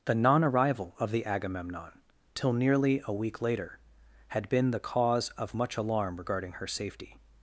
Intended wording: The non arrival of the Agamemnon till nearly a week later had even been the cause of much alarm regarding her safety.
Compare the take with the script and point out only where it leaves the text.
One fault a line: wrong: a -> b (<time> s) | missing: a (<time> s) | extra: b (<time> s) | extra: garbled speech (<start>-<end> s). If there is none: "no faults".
missing: even (4.5 s)